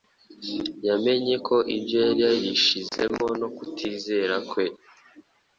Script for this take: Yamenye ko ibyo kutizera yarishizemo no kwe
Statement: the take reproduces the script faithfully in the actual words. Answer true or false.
false